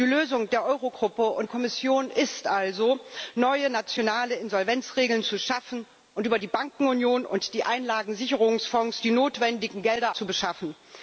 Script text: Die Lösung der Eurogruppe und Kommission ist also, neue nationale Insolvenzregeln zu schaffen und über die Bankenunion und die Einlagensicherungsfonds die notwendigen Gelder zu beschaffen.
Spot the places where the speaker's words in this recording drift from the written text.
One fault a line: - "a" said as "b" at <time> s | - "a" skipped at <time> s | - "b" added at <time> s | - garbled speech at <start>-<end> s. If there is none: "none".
none